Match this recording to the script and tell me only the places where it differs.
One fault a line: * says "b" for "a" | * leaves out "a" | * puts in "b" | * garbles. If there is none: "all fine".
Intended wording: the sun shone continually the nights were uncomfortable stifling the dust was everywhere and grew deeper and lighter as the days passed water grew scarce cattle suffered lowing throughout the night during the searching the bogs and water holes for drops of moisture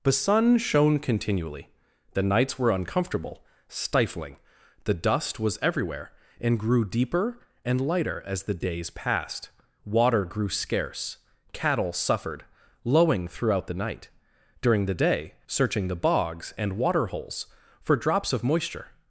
* puts in "day"